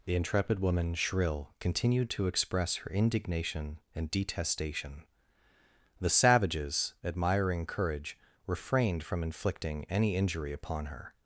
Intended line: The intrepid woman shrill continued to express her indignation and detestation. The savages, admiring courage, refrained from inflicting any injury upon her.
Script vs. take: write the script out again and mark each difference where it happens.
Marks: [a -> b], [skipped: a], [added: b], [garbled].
The intrepid woman shrill continued to express her indignation and detestation. The savages, admiring courage, refrained from inflicting any injury upon her.